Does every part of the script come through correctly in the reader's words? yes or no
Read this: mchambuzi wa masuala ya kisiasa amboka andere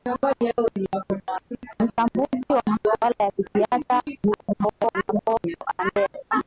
no